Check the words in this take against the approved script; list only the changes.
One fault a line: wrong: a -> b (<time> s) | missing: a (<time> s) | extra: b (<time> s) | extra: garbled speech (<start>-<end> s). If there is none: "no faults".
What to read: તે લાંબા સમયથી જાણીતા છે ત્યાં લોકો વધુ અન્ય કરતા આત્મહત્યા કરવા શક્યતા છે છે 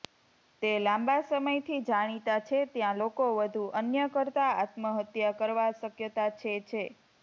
no faults